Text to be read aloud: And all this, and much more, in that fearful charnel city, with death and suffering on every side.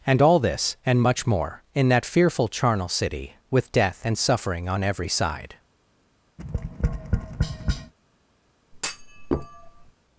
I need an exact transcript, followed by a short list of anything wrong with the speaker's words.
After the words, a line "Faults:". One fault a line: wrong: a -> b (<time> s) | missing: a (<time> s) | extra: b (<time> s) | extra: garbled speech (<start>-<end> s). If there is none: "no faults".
And all this, and much more, in that fearful charnel city, with death and suffering on every side.
Faults:
no faults